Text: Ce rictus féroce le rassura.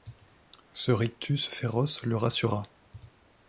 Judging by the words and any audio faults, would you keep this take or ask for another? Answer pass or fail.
pass